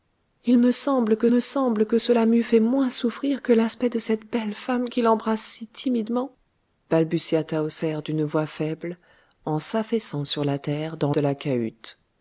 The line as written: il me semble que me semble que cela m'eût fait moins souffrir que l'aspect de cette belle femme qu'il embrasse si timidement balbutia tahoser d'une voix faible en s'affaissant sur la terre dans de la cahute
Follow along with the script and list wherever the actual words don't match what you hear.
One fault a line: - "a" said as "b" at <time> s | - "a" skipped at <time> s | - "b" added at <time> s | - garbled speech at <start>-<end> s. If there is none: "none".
none